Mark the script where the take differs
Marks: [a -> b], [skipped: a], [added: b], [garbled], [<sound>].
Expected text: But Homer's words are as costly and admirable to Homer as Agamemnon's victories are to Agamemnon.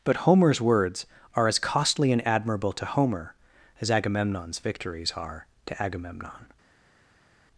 But Homer's words are as costly and admirable to Homer as Agamemnon's victories are to Agamemnon.